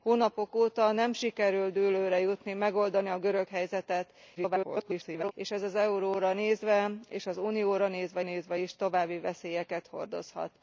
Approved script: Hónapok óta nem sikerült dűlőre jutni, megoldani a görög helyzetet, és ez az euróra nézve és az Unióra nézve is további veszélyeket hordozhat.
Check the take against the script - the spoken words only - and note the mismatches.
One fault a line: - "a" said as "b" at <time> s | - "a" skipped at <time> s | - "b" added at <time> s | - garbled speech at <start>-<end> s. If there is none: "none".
- garbled speech at 4.4-5.3 s
- "nézve" added at 8.2 s